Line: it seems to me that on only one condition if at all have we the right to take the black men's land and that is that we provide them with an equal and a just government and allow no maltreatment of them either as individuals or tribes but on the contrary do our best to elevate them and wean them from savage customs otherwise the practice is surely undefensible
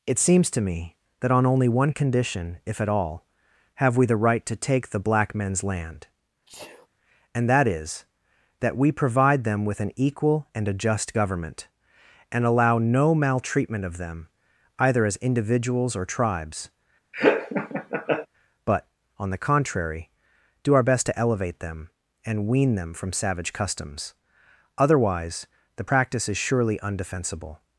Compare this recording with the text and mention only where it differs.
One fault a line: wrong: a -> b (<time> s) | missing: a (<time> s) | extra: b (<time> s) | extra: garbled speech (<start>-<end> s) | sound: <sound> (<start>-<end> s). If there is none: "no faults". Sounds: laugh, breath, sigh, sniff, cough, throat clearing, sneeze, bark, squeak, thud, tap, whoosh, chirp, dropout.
sound: sneeze (6.5-6.9 s)
sound: laugh (17.1-18.3 s)